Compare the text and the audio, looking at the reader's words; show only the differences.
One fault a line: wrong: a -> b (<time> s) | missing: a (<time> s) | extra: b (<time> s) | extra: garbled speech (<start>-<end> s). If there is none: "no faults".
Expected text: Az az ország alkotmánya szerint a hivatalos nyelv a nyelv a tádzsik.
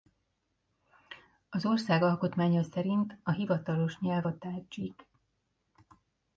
missing: az (1.6 s)
missing: nyelv a (4.4 s)